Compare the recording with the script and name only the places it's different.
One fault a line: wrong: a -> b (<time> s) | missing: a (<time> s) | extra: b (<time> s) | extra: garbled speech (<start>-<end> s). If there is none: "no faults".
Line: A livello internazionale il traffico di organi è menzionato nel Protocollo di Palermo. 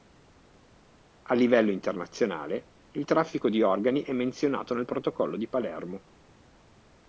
no faults